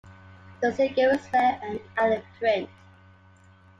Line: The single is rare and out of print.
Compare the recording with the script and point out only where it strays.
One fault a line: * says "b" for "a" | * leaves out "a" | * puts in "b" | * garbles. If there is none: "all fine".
all fine